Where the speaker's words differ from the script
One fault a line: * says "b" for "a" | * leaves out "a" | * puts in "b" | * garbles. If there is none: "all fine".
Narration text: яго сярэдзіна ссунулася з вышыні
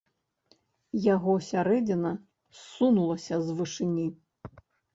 all fine